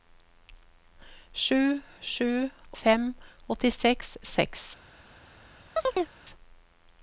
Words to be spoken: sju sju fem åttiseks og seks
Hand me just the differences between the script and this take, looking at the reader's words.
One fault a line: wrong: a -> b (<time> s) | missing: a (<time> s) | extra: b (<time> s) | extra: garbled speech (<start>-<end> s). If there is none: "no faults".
no faults